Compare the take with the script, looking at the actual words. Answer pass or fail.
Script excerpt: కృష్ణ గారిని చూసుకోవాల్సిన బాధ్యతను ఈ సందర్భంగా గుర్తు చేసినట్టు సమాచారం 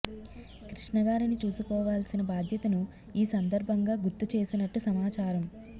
pass